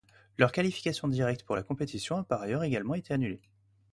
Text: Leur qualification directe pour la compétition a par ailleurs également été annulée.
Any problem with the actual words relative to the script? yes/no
no